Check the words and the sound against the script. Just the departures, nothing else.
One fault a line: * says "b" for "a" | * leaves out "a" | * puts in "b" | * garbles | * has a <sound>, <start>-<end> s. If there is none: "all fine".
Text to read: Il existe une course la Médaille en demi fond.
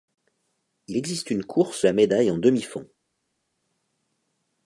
all fine